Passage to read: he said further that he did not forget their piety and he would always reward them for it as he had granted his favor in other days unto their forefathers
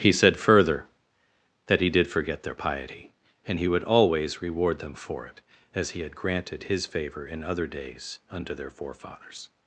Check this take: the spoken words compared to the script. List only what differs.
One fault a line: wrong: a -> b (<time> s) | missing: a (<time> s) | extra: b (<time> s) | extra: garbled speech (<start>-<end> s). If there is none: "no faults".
missing: not (2.1 s)